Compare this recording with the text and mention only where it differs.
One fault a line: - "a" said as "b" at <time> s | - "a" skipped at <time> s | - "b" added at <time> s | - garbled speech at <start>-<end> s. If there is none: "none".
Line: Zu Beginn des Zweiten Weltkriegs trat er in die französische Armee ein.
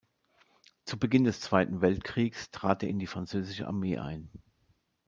none